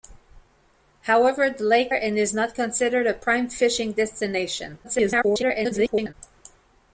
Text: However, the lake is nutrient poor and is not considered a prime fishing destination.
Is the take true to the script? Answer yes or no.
no